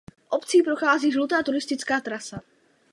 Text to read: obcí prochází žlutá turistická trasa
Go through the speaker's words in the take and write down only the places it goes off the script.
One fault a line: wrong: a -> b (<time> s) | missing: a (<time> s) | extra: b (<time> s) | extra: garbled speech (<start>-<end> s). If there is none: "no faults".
no faults